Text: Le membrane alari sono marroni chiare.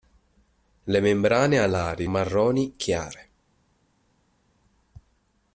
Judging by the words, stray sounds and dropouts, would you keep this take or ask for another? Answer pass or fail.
fail